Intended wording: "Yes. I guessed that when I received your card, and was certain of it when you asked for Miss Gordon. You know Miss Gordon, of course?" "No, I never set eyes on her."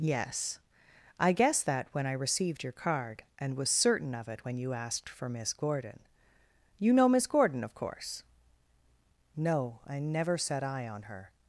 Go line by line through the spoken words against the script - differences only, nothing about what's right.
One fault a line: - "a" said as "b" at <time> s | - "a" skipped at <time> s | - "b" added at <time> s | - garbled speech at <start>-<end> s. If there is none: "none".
- "eyes" said as "eye" at 10.6 s